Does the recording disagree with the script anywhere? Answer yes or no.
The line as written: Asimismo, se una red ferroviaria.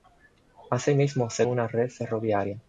no